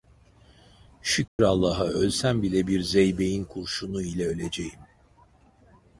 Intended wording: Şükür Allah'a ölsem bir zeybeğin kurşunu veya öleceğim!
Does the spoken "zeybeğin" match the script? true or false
true